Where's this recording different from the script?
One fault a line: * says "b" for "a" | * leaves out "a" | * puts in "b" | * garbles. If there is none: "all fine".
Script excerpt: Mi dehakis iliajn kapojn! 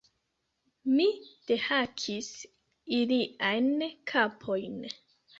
all fine